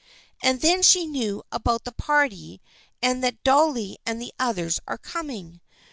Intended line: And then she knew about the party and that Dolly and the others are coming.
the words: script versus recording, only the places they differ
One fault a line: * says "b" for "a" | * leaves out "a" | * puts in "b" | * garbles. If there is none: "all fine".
all fine